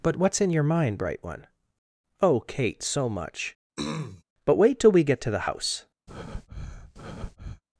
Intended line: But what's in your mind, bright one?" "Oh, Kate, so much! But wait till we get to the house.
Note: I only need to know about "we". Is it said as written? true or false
true